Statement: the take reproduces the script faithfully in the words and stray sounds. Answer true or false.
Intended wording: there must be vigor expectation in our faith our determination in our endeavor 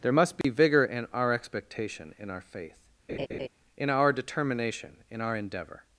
false